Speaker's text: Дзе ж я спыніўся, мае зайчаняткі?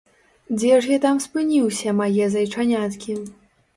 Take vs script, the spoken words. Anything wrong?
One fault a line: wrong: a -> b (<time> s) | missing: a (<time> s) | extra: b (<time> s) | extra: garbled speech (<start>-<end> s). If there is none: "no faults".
extra: там (1.0 s)